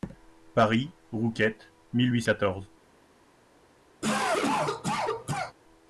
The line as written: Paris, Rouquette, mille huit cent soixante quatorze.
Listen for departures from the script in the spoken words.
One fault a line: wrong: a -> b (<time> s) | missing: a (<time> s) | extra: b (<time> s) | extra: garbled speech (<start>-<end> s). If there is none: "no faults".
missing: cent soixante (2.2 s)